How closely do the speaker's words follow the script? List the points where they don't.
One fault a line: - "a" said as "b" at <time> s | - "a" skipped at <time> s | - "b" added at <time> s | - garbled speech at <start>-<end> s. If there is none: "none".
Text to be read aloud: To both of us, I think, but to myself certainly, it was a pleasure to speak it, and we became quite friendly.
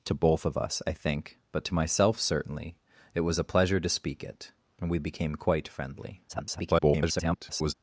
- garbled speech at 6.3-7.7 s